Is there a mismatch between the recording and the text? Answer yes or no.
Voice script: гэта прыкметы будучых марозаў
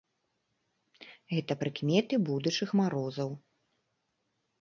no